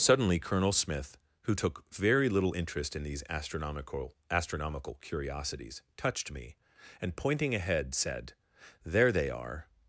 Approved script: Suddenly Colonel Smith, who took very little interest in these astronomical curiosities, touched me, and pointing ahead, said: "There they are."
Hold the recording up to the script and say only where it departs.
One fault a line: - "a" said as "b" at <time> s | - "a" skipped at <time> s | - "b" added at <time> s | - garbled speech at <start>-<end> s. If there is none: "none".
- "astronomical" added at 4.3 s